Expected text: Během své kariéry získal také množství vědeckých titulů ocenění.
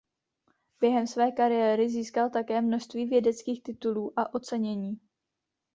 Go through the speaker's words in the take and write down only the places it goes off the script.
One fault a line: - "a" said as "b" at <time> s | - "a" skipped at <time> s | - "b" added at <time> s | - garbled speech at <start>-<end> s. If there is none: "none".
- "a" added at 4.2 s